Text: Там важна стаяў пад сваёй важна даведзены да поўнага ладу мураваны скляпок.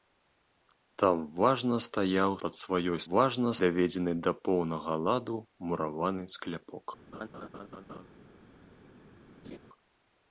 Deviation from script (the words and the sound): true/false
true